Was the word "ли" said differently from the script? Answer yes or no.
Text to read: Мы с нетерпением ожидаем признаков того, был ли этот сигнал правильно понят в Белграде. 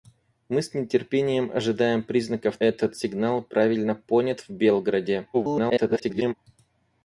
yes